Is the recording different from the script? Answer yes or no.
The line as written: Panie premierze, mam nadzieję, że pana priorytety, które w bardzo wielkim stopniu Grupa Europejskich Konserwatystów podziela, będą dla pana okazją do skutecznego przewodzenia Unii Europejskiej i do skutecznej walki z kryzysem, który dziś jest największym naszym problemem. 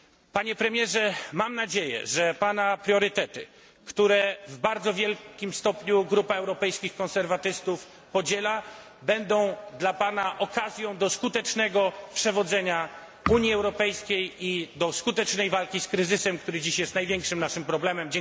no